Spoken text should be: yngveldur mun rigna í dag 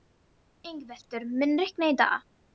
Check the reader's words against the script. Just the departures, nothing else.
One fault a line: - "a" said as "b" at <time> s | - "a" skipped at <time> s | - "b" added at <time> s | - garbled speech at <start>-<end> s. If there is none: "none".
none